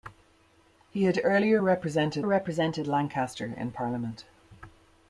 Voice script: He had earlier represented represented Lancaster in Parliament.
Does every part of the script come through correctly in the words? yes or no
yes